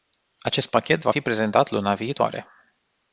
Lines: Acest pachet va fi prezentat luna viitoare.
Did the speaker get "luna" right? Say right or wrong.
right